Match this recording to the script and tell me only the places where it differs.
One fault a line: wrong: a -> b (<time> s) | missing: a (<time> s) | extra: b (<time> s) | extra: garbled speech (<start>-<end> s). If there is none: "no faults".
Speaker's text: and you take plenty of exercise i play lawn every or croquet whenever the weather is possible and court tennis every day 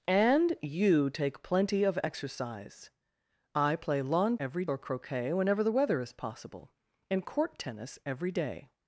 no faults